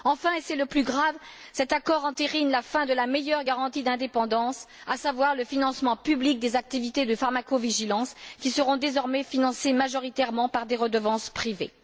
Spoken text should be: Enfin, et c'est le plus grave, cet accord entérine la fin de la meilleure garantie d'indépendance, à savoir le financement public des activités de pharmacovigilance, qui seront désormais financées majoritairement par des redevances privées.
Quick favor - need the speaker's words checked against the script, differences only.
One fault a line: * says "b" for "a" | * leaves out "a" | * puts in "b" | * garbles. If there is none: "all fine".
all fine